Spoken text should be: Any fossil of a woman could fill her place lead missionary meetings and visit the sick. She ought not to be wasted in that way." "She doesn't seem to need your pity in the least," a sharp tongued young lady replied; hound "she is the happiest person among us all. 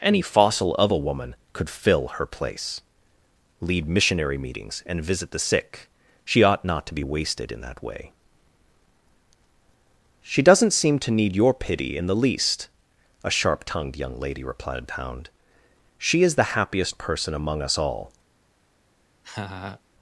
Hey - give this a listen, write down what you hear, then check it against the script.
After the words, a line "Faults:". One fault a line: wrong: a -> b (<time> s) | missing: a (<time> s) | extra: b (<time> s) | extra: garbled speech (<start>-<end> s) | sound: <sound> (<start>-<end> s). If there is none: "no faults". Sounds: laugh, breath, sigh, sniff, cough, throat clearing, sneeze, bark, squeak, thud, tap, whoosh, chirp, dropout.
Any fossil of a woman could fill her place lead missionary meetings and visit the sick. She ought not to be wasted in that way." "She doesn't seem to need your pity in the least," a sharp tongued young lady replied; hound "she is the happiest person among us all.
Faults:
sound: laugh (19.2-19.8 s)